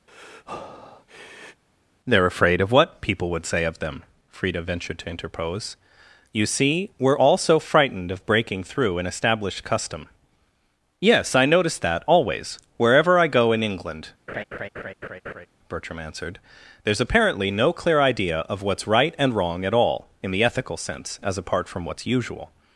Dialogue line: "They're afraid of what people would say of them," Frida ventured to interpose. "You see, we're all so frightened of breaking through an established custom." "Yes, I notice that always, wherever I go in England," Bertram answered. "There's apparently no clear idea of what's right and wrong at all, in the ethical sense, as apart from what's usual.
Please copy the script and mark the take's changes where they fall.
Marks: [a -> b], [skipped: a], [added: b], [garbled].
"They're afraid of what people would say of them," Frida ventured to interpose. "You see, we're all so frightened of breaking through an established custom." "Yes, I notice that always, wherever I go in England," Bertram answered. "There's apparently no clear idea of what's right and wrong at all, in the ethical sense, as apart from what's usual.